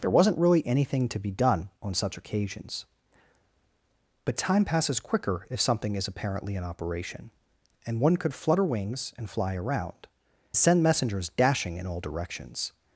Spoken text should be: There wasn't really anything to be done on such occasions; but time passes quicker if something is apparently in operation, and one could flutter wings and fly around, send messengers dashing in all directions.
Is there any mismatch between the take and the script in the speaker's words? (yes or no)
no